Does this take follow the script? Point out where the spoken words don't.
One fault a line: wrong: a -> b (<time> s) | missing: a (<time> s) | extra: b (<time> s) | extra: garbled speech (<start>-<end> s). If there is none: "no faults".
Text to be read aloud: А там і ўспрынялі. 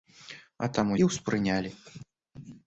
no faults